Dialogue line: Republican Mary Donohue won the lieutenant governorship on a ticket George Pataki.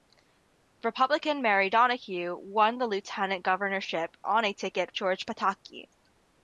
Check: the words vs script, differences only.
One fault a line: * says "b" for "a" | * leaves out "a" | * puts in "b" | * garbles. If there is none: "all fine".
all fine